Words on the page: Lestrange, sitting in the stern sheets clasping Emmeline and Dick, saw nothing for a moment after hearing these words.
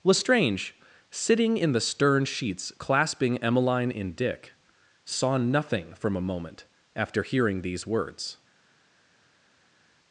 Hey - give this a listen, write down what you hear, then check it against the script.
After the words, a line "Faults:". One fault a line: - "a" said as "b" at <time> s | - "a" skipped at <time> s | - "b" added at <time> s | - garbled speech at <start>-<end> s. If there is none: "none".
Lestrange, sitting in the stern sheets clasping Emmeline in Dick, saw nothing from a moment after hearing these words.
Faults:
- "and" said as "in" at 3.9 s
- "for" said as "from" at 5.9 s